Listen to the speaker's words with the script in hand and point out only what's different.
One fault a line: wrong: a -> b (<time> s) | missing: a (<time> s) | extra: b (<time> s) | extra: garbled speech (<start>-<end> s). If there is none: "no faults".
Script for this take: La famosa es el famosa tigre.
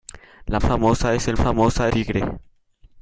no faults